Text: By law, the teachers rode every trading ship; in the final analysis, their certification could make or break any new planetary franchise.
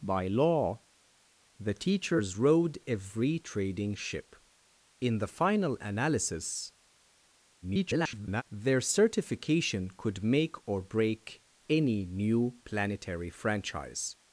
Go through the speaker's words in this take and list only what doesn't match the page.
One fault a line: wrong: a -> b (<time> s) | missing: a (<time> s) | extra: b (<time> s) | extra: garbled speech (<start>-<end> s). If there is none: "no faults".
extra: garbled speech (7.6-8.4 s)